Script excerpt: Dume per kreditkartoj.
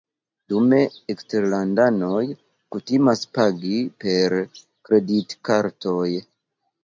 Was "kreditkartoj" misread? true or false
false